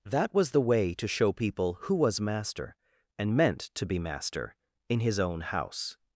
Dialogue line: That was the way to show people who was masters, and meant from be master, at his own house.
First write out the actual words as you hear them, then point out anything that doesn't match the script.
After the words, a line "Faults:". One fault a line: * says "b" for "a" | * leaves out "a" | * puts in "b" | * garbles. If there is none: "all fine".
That was the way to show people who was master, and meant to be master, in his own house.
Faults:
* says "master" for "masters"
* says "to" for "from"
* says "in" for "at"